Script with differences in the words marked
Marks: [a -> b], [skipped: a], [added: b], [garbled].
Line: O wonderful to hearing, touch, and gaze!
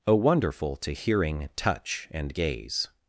O wonderful to hearing, touch, and gaze!